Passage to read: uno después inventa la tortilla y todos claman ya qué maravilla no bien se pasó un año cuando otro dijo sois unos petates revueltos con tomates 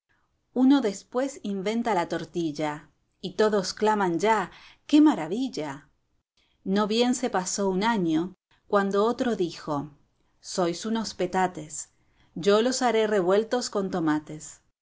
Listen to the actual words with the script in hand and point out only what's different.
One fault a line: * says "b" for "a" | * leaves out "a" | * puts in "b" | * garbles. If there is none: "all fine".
* puts in "yo los haré"